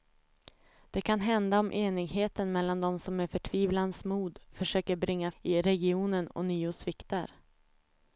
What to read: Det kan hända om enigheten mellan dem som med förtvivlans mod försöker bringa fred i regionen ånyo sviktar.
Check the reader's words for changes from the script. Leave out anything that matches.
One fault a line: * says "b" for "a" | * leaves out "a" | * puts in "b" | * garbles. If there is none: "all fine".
* leaves out "fred"